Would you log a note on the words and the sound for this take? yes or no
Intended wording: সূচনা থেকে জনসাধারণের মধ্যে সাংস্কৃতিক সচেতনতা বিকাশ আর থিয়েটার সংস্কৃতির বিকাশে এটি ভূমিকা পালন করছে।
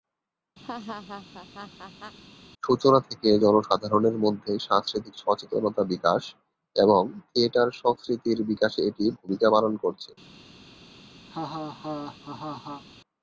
yes